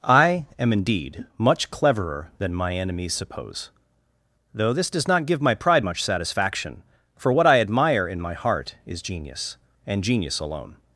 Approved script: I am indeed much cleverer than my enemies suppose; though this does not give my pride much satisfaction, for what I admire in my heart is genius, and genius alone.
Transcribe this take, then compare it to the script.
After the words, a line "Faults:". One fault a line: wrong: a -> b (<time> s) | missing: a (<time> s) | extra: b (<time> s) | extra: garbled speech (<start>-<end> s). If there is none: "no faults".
I am indeed much cleverer than my enemies suppose; though this does not give my pride much satisfaction, for what I admire in my heart is genius, and genius alone.
Faults:
no faults